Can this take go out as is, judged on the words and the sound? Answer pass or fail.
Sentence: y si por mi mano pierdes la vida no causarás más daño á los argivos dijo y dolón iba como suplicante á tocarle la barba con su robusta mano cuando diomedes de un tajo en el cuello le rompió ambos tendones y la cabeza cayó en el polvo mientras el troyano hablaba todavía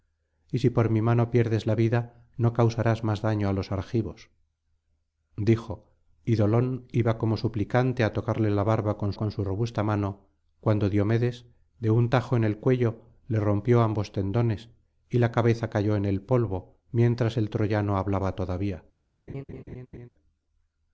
fail